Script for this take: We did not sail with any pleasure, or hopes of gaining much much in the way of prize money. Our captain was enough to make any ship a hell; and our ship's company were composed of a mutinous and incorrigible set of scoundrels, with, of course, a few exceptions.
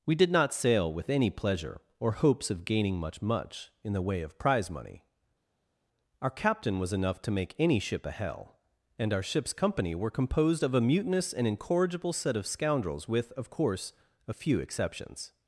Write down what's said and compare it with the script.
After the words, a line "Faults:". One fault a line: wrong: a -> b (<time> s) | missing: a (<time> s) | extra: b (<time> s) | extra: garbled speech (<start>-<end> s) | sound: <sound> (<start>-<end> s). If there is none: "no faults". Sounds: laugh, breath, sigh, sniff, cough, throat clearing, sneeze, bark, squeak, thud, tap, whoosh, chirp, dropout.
We did not sail with any pleasure, or hopes of gaining much much in the way of prize money. Our captain was enough to make any ship a hell; and our ship's company were composed of a mutinous and incorrigible set of scoundrels, with, of course, a few exceptions.
Faults:
no faults